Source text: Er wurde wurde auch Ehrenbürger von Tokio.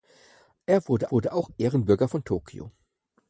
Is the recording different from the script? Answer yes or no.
no